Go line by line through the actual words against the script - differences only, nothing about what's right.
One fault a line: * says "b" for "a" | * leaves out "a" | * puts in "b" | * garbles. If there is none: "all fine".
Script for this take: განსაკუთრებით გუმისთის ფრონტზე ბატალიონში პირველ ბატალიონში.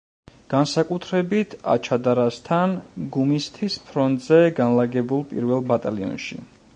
* puts in "აჩადარასთან"
* says "განლაგებულ" for "ბატალიონში"